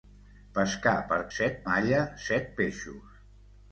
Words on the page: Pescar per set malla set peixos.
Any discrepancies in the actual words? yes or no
no